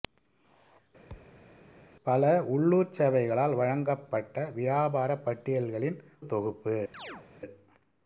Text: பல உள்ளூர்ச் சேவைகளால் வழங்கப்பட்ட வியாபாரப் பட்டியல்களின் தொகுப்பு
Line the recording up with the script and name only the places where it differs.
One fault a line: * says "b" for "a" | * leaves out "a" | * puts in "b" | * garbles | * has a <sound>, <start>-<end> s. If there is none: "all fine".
* has a thud, 1.1-1.5 s
* has a chirp, 6.9-7.3 s